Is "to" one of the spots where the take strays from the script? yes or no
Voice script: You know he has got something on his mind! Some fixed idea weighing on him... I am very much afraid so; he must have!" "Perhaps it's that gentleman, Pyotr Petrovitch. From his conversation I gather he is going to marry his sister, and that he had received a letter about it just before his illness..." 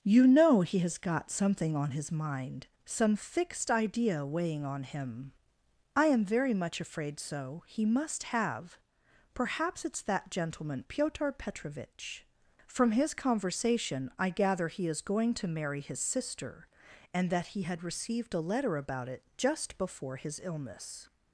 no